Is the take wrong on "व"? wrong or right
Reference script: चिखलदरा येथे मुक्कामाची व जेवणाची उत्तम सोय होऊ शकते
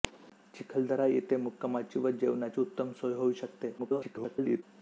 right